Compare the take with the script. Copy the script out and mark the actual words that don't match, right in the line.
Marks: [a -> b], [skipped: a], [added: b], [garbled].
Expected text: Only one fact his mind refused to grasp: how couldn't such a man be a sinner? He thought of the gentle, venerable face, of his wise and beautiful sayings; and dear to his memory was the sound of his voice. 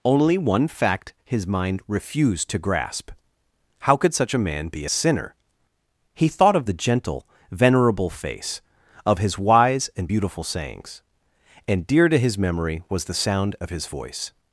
Only one fact his mind refused to grasp: how [couldn't -> could] such a man be a sinner? He thought of the gentle, venerable face, of his wise and beautiful sayings; and dear to his memory was the sound of his voice.